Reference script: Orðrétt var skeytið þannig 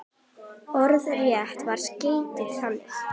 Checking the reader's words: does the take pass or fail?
pass